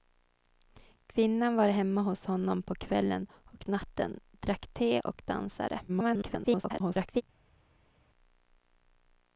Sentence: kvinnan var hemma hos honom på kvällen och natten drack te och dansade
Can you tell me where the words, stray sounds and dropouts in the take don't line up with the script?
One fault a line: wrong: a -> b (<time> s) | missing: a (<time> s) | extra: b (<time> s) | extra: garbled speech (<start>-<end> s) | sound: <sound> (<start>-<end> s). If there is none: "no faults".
extra: garbled speech (5.9-7.2 s)